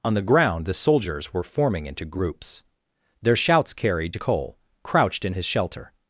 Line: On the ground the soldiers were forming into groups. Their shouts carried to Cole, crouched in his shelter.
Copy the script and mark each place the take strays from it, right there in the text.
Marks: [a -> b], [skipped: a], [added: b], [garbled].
On the ground the soldiers were forming into groups. Their shouts carried to Cole, crouched in his shelter.